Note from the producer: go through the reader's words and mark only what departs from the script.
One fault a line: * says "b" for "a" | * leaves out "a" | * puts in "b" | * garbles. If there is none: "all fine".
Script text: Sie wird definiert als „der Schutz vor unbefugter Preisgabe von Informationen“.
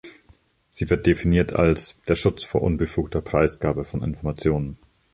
all fine